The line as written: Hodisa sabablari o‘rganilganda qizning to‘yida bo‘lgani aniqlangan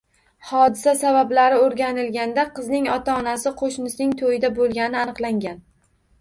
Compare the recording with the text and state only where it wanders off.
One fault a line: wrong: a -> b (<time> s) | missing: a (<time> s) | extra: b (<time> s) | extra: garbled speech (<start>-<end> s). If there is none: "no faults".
extra: ota onasi qo‘shnisining (3.0 s)